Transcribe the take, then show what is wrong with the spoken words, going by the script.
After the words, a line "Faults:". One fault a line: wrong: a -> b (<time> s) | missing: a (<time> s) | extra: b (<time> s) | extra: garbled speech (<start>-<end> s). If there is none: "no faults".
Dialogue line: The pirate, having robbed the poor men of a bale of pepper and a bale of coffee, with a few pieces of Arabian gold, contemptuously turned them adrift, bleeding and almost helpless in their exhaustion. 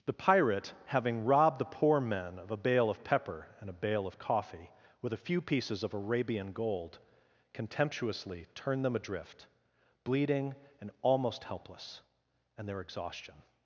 The pirate, having robbed the poor men of a bale of pepper and a bale of coffee, with a few pieces of Arabian gold, contemptuously turned them adrift, bleeding and almost helpless and their exhaustion.
Faults:
wrong: in -> and (12.6 s)